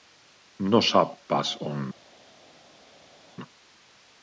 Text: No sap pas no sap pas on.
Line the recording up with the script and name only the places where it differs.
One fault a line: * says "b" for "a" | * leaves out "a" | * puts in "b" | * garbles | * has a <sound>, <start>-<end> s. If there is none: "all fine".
* leaves out "no sap pas"